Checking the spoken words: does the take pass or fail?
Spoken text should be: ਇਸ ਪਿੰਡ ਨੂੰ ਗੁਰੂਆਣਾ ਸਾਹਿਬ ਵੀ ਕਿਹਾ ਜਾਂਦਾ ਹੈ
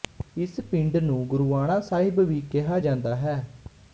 pass